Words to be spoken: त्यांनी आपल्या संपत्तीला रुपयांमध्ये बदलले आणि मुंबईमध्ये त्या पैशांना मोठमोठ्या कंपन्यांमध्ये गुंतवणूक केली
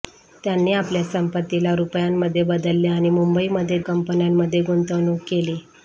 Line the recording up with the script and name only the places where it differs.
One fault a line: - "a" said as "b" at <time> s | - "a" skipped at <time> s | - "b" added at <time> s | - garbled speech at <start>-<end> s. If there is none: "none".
- "त्या पैशांना मोठमोठ्या" skipped at 3.8 s